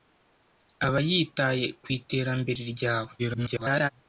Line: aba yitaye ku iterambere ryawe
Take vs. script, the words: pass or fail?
fail